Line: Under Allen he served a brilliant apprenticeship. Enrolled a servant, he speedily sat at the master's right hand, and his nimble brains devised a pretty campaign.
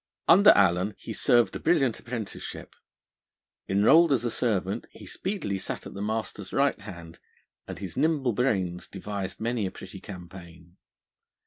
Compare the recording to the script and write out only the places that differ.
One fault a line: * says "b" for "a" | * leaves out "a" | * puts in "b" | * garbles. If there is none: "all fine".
* puts in "as"
* puts in "many"